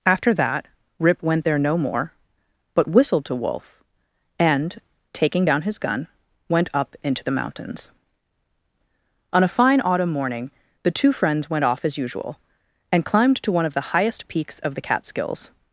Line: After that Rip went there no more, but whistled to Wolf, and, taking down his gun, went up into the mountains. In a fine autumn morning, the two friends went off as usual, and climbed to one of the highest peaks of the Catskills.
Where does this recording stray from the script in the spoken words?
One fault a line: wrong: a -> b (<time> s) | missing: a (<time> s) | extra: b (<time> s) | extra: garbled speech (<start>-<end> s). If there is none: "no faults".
wrong: In -> On (9.3 s)